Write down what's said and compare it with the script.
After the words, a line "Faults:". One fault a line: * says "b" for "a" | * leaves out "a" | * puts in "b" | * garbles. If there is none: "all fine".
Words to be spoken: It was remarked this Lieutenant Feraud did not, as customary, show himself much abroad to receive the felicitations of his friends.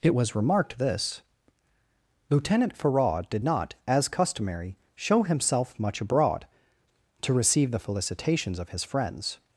It was remarked this Lieutenant Feraud did not, as customary, show himself much abroad to receive the felicitations of his friends.
Faults:
all fine